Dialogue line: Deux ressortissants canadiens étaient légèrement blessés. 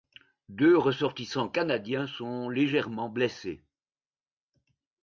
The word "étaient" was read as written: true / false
false